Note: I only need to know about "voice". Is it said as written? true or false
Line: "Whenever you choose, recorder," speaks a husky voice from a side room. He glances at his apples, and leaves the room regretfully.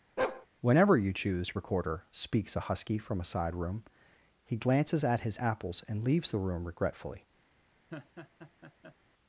false